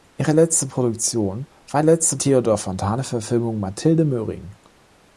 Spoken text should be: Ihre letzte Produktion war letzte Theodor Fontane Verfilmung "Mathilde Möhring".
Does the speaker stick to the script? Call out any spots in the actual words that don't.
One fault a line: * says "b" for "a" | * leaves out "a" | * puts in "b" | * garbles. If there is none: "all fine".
all fine